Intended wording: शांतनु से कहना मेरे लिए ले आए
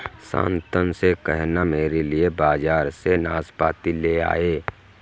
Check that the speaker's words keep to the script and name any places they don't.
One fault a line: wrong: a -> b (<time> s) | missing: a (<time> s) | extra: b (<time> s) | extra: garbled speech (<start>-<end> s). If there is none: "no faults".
extra: बाजार से नाशपाती (2.4 s)